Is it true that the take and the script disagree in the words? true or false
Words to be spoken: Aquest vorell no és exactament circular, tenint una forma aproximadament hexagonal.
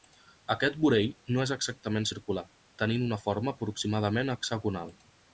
false